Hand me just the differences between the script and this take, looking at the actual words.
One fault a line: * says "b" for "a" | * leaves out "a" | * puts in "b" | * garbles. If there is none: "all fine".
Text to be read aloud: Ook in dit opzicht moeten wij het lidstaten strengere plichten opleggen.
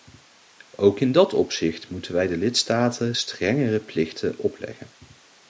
* says "dat" for "dit"
* says "de" for "het"